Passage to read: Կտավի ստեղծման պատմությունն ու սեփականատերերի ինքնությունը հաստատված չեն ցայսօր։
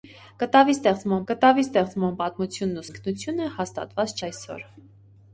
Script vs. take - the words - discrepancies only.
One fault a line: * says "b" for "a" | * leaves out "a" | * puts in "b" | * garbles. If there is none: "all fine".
* puts in "կտավի ստեղծման"
* leaves out "սեփականատերերի"
* leaves out "չեն"